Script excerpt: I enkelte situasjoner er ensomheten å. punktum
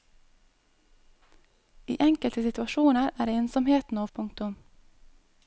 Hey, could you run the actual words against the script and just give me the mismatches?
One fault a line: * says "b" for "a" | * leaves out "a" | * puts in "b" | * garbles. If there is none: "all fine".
all fine